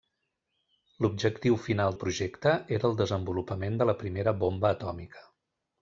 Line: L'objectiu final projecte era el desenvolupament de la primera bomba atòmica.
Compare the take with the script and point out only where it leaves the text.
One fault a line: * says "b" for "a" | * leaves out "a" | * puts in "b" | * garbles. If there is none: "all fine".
all fine